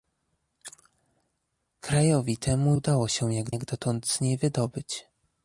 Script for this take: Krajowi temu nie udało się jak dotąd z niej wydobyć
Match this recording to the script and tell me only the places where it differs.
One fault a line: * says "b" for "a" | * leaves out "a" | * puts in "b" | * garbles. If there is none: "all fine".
* leaves out "nie"
* puts in "jak"